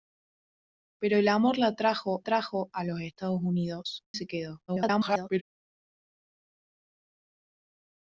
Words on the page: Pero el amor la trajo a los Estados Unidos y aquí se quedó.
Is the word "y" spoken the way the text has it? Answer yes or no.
no